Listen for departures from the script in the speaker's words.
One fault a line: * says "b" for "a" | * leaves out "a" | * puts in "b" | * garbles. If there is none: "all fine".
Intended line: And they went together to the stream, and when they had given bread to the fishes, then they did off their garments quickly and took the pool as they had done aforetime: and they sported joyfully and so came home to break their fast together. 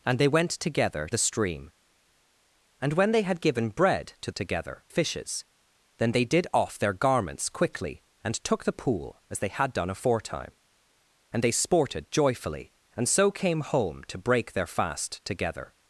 * leaves out "to"
* says "together" for "the"